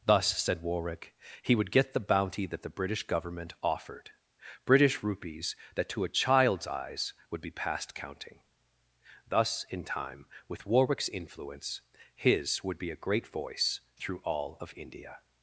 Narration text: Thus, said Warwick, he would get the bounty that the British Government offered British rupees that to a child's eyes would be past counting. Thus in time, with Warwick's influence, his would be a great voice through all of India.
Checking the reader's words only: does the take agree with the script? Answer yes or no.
yes